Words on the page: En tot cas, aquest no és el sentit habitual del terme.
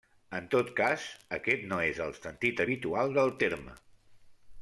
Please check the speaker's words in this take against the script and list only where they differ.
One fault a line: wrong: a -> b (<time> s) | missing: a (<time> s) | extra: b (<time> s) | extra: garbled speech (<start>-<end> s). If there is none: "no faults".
no faults